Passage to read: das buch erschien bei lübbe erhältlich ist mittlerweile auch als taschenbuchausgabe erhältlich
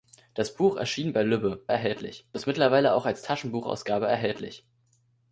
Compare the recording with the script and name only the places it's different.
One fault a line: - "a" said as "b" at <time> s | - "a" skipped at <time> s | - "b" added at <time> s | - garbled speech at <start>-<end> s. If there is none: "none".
none